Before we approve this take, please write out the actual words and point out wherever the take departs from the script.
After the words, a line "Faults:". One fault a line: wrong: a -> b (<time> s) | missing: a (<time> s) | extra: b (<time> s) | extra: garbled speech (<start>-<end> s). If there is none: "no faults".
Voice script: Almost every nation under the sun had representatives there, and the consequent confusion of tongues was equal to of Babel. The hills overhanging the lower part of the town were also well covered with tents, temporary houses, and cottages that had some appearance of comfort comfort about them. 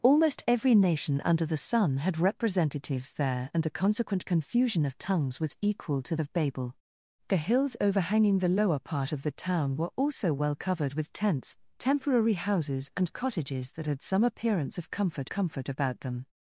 Almost every nation under the sun had representatives there, and the consequent confusion of tongues was equal to of Babel. The hills overhanging the lower part of the town were also well covered with tents, temporary houses, and cottages that had some appearance of comfort comfort about them.
Faults:
no faults